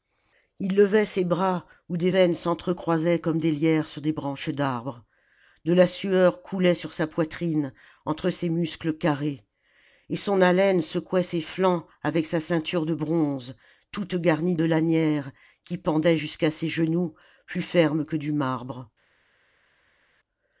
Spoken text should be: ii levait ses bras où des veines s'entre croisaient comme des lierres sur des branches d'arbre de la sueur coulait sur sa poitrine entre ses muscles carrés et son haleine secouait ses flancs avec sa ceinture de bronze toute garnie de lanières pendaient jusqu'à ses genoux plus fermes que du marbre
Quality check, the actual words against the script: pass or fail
fail